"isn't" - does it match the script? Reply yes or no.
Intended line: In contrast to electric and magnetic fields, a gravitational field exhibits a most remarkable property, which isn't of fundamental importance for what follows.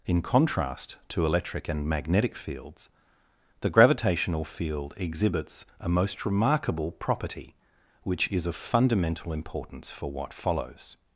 no